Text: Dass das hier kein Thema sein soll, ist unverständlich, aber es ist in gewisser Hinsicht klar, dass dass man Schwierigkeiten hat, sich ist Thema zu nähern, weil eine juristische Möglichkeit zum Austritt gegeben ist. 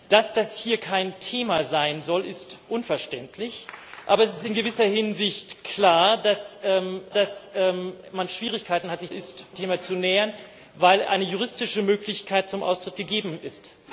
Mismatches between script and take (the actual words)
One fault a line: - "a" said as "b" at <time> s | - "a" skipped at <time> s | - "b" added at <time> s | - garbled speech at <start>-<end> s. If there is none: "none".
none